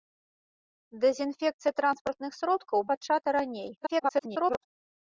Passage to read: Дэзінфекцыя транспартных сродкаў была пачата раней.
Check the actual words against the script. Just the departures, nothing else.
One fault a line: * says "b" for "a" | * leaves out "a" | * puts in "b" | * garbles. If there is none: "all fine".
* leaves out "была"
* garbles